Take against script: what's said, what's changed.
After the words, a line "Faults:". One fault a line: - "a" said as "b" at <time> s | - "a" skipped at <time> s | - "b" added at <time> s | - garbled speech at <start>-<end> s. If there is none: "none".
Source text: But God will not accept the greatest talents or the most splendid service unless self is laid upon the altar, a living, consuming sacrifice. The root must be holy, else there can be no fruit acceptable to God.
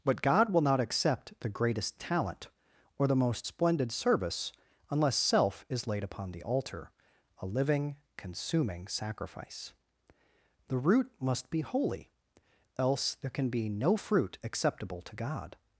But God will not accept the greatest talent or the most splendid service unless self is laid upon the altar, a living, consuming sacrifice. The root must be holy, else there can be no fruit acceptable to God.
Faults:
- "talents" said as "talent" at 2.0 s